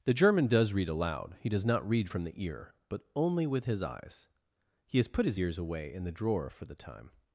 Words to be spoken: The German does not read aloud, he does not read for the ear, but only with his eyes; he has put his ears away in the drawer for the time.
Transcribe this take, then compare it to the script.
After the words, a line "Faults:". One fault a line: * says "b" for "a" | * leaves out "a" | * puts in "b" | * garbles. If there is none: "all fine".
The German does read aloud, he does not read from the ear, but only with his eyes; he has put his ears away in the drawer for the time.
Faults:
* leaves out "not"
* says "from" for "for"